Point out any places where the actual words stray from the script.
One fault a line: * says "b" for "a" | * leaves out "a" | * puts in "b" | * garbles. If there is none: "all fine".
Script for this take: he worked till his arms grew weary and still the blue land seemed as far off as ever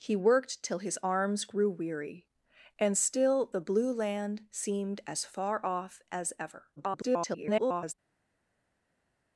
* garbles